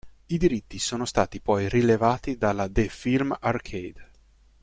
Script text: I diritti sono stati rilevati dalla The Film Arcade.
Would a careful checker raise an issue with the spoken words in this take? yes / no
yes